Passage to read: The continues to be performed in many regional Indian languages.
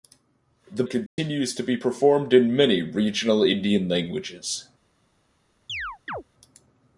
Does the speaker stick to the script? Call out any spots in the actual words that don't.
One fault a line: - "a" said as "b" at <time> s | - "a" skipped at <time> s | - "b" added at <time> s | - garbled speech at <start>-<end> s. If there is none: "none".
none